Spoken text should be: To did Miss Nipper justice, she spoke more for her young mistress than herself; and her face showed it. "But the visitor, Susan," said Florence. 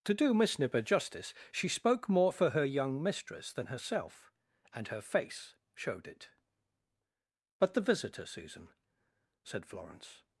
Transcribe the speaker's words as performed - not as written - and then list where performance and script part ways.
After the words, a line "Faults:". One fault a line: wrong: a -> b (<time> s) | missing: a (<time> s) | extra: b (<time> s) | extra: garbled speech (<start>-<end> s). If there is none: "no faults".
To do Miss Nipper justice, she spoke more for her young mistress than herself; and her face showed it. "But the visitor, Susan," said Florence.
Faults:
wrong: did -> do (0.1 s)